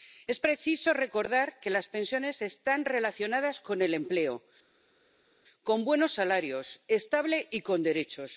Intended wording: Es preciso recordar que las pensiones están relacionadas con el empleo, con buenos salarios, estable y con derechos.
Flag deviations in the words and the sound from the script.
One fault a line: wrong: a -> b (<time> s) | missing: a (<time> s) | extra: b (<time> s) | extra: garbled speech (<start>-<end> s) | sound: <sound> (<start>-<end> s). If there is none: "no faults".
no faults